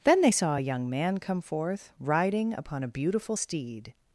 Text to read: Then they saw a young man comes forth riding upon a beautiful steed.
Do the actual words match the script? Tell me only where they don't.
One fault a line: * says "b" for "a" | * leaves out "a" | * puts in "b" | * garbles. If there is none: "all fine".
* says "come" for "comes"